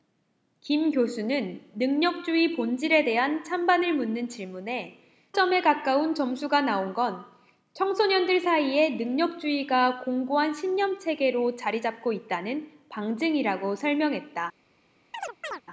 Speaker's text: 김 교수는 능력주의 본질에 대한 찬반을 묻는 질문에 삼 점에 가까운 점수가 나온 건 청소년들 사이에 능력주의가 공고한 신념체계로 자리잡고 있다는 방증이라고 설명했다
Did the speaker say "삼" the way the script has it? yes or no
no